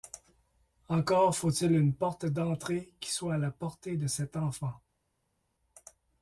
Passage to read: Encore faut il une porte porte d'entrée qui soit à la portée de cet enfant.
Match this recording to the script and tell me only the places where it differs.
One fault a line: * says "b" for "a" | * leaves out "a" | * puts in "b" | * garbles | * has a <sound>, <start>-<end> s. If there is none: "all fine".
* leaves out "porte"